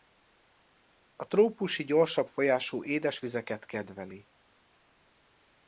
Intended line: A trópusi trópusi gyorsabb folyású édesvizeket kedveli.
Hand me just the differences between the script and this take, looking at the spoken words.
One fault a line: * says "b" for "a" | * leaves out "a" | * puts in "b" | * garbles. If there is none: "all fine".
* leaves out "trópusi"